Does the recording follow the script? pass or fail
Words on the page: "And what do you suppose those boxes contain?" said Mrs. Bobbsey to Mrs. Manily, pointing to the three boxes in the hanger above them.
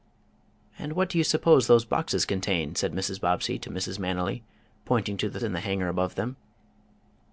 fail